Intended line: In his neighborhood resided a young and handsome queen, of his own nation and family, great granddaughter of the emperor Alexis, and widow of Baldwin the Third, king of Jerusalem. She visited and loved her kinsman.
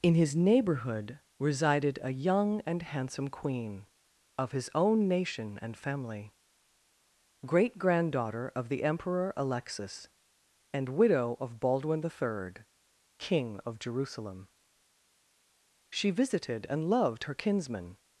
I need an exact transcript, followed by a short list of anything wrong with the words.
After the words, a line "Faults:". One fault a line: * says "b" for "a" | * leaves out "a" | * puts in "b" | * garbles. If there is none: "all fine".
In his neighborhood resided a young and handsome queen, of his own nation and family, great granddaughter of the emperor Alexis, and widow of Baldwin the Third, king of Jerusalem. She visited and loved her kinsman.
Faults:
all fine